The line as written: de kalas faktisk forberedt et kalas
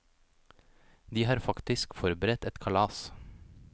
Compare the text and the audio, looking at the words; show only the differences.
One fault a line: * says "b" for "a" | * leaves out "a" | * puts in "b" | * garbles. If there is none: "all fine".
* says "har" for "kalas"